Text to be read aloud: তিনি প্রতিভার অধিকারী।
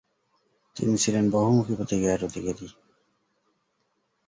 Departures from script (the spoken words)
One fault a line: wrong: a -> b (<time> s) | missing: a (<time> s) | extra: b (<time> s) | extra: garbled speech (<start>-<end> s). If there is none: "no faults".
extra: ছিলেন বহুমুখী (1.0 s)